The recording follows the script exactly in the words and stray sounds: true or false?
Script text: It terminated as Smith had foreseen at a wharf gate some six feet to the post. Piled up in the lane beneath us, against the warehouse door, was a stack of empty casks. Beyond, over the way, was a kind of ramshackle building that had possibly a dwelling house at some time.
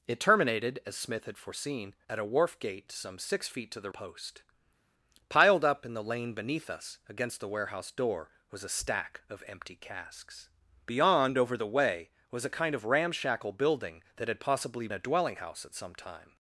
true